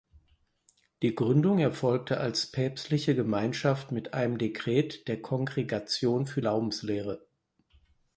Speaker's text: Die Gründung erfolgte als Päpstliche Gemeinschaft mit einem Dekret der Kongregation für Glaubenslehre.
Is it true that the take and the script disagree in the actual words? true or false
false